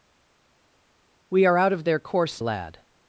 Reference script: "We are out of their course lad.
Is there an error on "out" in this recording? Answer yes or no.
no